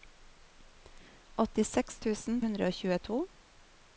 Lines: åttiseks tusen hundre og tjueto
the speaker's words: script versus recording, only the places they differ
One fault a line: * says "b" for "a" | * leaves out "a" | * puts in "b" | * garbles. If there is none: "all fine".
all fine